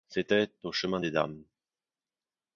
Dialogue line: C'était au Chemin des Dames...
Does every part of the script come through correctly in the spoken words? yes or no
yes